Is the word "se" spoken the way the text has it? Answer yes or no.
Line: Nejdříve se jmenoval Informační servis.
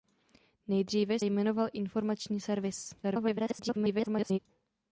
no